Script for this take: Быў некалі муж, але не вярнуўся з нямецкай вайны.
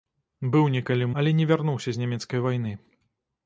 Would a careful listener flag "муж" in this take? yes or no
yes